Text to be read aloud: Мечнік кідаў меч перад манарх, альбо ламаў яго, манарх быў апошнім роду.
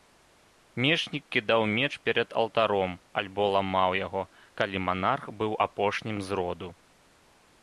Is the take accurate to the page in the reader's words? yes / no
no